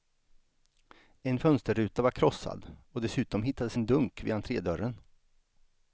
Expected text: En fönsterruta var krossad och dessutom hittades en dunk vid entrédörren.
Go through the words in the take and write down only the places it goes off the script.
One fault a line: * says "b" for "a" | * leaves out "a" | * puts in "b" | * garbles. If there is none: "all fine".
all fine